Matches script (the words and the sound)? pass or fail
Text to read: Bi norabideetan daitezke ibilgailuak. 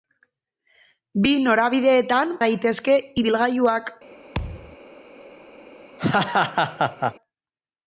fail